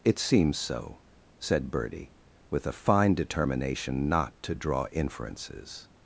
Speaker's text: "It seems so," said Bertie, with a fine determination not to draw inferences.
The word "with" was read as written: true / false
true